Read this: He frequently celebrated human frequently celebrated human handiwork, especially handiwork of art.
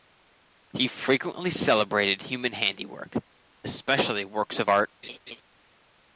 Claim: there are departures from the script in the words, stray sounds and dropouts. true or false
true